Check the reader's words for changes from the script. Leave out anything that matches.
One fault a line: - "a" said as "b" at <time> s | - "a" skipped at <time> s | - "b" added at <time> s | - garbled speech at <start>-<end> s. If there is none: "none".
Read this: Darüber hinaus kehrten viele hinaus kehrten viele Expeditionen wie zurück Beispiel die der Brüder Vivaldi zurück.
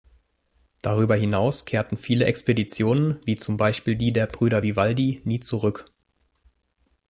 - "hinaus kehrten viele" skipped at 2.2 s
- "zurück" said as "zum" at 3.4 s
- "nie" added at 5.2 s